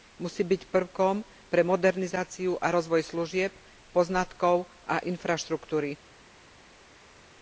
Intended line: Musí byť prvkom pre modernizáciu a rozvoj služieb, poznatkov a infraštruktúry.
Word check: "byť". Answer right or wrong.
right